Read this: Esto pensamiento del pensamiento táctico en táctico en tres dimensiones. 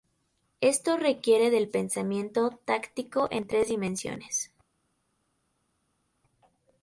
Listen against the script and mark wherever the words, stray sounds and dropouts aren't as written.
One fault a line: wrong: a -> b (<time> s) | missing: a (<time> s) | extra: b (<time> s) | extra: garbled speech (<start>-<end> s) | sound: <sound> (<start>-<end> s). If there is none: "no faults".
wrong: pensamiento -> requiere (1.0 s)
missing: táctico en (3.5 s)